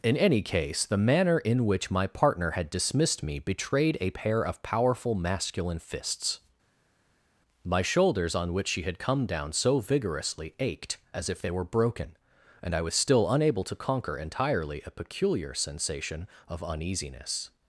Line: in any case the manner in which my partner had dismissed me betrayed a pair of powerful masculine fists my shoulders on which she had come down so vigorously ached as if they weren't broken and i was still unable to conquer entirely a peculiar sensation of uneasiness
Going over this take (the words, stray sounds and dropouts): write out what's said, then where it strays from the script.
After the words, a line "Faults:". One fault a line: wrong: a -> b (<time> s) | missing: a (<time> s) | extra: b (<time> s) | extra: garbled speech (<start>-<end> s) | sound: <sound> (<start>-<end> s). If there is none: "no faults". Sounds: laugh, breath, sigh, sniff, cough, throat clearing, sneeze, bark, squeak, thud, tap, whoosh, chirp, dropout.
in any case the manner in which my partner had dismissed me betrayed a pair of powerful masculine fists my shoulders on which she had come down so vigorously ached as if they were broken and i was still unable to conquer entirely a peculiar sensation of uneasiness
Faults:
wrong: weren't -> were (11.5 s)